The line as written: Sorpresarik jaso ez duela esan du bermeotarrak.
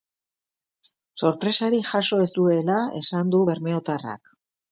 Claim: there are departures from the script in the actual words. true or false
false